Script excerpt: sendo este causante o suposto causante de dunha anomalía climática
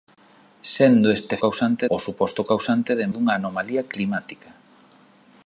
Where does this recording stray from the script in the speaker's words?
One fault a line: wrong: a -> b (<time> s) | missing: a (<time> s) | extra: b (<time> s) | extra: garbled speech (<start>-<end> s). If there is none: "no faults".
no faults